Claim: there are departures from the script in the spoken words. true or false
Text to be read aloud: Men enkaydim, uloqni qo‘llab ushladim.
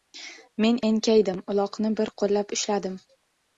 true